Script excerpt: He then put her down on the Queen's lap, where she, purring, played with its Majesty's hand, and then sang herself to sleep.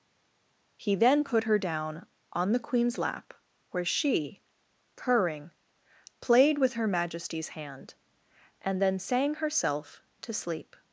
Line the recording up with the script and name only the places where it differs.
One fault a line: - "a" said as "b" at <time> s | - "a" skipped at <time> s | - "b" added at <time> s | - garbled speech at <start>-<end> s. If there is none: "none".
- "its" said as "her" at 6.7 s